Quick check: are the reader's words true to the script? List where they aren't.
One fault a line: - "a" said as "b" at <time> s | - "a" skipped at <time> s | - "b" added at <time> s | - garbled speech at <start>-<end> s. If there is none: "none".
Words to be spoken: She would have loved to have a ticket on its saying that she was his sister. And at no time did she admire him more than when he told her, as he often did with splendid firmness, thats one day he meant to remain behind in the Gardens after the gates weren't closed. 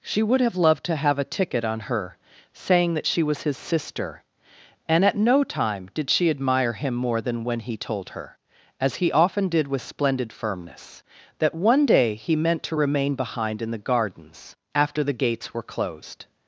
- "its" said as "her" at 1.8 s
- "thats" said as "that" at 11.4 s
- "weren't" said as "were" at 15.5 s